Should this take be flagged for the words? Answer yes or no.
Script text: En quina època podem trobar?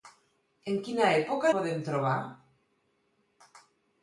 no